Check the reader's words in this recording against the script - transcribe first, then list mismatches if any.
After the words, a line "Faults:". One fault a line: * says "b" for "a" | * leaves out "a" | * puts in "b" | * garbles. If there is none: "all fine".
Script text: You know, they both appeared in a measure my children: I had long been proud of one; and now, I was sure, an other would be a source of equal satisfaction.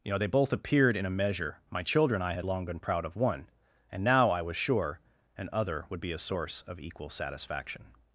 You know, they both appeared in a measure my children: I had long been proud of one; and now, I was sure, an other would be a source of equal satisfaction.
Faults:
all fine